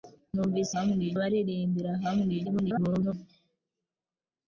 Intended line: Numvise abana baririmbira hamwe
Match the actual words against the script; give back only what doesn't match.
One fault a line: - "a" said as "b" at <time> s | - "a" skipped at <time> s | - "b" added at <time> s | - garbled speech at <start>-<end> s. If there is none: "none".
- "abana" said as "hamwe" at 0.7 s
- garbled speech at 2.4-3.1 s